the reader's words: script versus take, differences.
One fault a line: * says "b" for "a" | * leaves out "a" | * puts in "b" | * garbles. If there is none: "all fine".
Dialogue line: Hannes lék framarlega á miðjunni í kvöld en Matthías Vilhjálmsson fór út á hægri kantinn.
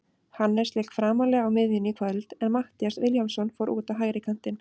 all fine